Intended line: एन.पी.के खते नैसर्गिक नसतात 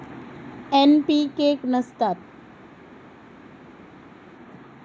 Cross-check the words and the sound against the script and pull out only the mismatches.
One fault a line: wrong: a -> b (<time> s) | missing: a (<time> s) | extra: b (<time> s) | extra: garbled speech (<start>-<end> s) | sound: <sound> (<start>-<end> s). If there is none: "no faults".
missing: खते नैसर्गिक (1.6 s)